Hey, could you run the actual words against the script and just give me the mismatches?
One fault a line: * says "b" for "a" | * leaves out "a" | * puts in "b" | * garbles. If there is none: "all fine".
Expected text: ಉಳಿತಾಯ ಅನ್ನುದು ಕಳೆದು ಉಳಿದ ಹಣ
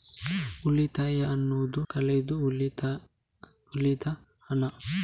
all fine